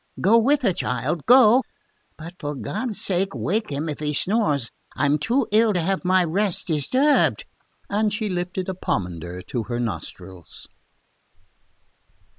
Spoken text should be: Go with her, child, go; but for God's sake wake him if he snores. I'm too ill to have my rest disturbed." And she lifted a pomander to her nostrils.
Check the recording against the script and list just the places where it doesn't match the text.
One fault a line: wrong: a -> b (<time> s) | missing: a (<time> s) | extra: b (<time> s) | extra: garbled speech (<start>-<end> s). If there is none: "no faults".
no faults